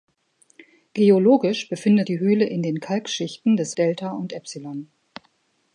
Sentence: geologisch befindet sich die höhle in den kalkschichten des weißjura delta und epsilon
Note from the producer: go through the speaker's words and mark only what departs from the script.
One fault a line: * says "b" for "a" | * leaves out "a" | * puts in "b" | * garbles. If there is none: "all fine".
* leaves out "sich"
* leaves out "weißjura"